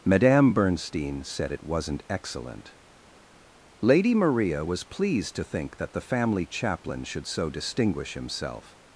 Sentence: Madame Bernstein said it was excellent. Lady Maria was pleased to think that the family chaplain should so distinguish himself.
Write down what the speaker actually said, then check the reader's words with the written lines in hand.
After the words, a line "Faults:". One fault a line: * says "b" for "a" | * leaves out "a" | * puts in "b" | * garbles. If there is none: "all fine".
Madame Bernstein said it wasn't excellent. Lady Maria was pleased to think that the family chaplain should so distinguish himself.
Faults:
* says "wasn't" for "was"